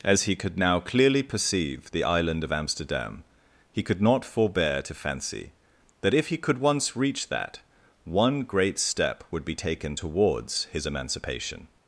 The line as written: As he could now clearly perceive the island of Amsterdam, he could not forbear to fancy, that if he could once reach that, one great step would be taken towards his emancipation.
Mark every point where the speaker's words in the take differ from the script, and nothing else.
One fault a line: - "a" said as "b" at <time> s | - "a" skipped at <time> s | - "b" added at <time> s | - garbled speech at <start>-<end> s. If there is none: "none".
none